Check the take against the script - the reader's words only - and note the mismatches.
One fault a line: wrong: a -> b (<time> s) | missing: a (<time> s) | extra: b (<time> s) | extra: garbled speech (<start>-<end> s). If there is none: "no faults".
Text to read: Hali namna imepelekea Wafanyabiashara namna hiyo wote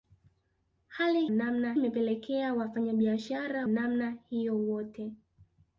no faults